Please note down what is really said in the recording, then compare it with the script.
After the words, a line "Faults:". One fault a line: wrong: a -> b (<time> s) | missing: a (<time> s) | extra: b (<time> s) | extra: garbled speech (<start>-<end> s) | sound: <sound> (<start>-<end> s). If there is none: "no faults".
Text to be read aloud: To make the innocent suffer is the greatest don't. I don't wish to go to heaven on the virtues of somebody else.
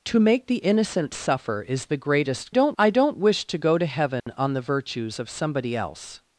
To make the innocent suffer is the greatest don't. I don't wish to go to heaven on the virtues of somebody else.
Faults:
sound: dropout (4.2-4.3 s)